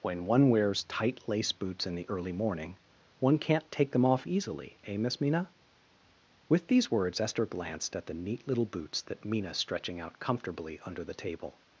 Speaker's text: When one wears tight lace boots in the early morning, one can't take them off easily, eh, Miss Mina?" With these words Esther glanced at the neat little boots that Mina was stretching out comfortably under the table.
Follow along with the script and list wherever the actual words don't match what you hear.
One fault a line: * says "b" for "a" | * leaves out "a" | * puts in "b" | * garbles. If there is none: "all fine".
* leaves out "was"